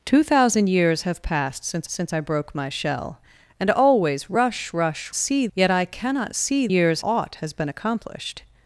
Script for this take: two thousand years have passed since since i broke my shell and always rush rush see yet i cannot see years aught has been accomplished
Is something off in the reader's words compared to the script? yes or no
no